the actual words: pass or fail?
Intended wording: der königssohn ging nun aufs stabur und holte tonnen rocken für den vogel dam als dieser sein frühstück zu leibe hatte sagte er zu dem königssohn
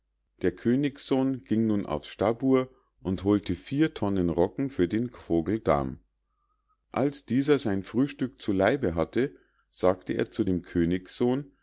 fail